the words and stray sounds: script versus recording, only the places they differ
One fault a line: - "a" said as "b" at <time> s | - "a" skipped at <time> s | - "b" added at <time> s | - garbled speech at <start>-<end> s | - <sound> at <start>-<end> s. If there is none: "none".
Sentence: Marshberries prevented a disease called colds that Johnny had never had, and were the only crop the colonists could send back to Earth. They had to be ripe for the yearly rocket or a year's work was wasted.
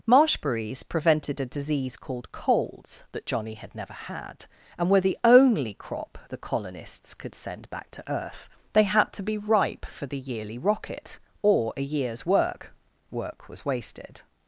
- "work" added at 13.1 s